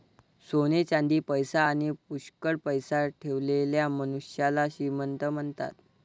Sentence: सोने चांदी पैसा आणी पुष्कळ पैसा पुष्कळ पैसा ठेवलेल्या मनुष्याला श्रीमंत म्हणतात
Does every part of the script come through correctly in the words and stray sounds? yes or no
no